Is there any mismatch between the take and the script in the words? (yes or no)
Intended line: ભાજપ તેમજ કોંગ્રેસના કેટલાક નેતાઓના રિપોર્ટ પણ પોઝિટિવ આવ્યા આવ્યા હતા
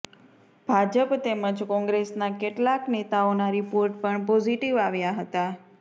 yes